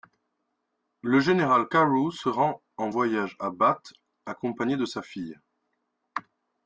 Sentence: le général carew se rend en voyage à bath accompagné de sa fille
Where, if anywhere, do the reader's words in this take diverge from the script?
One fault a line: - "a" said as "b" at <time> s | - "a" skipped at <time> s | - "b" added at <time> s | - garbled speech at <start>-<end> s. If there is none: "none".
none